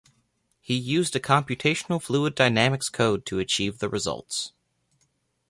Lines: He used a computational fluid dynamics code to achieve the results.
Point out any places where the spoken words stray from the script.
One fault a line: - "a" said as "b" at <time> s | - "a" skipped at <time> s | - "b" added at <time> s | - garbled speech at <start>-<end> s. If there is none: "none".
none